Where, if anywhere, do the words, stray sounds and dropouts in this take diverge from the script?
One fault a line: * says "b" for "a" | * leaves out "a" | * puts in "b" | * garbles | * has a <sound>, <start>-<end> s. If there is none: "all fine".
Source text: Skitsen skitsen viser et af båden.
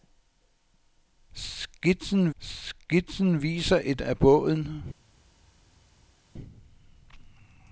all fine